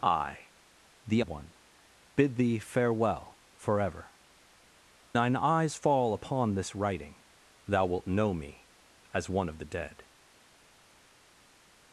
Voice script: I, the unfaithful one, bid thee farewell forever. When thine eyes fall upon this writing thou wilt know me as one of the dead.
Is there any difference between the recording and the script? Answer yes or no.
yes